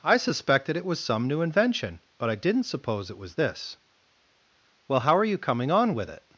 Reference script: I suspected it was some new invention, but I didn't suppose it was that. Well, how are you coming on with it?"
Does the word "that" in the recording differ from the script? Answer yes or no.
yes